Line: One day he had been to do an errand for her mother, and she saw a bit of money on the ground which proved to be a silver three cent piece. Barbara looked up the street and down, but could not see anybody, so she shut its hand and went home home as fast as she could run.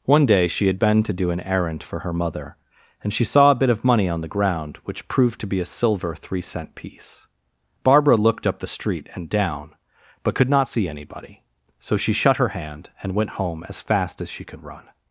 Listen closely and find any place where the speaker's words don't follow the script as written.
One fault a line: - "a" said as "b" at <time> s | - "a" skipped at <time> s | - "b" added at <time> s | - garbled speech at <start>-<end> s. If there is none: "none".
- "he" said as "she" at 0.5 s
- "its" said as "her" at 12.4 s
- "home" skipped at 13.6 s